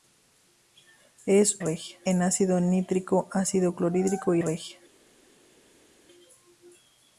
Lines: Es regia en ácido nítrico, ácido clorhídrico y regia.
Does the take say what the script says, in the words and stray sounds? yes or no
yes